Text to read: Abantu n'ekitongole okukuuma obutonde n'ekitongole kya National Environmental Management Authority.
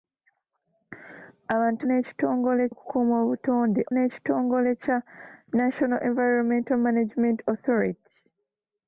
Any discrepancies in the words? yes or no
no